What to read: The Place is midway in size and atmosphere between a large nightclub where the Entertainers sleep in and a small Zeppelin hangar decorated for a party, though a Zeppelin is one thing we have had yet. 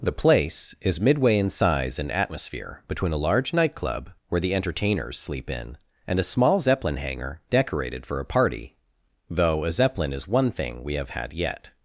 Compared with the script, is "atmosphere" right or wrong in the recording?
right